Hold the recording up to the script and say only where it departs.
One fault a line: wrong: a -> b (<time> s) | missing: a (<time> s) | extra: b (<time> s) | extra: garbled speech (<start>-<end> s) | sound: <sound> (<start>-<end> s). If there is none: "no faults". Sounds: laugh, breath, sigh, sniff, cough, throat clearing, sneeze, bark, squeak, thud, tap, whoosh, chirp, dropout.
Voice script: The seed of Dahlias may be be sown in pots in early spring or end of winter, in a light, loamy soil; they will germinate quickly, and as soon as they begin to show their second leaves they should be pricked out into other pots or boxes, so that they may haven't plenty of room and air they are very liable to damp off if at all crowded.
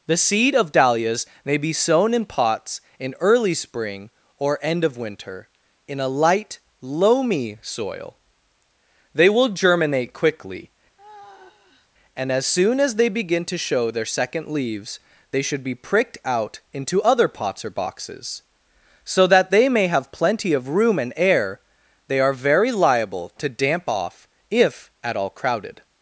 missing: be (1.7 s)
sound: sigh (11.0-11.9 s)
wrong: haven't -> have (19.9 s)